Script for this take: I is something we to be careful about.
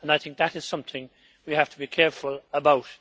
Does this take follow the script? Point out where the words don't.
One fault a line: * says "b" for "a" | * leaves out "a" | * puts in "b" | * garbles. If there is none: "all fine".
* puts in "think that"
* puts in "have"